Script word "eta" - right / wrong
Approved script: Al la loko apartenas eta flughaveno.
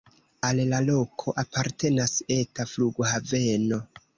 right